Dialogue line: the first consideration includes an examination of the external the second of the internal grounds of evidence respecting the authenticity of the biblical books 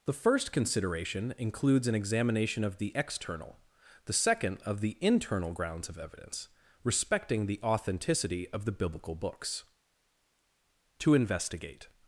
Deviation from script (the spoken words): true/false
true